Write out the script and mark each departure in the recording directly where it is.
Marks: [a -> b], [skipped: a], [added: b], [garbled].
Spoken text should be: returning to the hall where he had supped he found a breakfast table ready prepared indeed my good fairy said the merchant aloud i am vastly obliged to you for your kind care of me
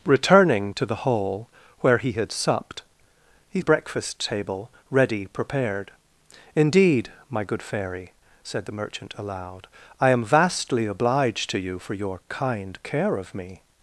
returning to the hall where he had supped he [skipped: found] a breakfast table ready prepared indeed my good fairy said the merchant aloud i am vastly obliged to you for your kind care of me